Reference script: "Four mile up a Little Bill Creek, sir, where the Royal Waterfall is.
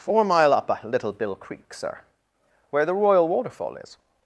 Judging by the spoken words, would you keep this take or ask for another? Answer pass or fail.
pass